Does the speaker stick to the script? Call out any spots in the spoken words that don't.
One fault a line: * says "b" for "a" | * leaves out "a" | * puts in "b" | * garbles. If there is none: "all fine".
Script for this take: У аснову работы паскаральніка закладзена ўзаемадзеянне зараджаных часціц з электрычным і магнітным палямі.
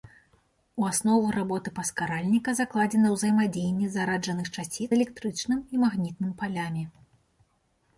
* leaves out "з"